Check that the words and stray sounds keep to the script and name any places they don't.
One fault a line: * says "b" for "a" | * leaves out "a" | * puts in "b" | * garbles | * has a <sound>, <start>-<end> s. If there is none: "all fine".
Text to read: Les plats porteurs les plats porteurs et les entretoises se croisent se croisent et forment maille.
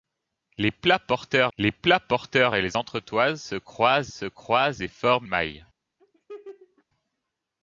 * has a laugh, 6.0-6.8 s